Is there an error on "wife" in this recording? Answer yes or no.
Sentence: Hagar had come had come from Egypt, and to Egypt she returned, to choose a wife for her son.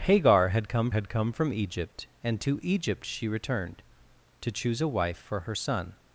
no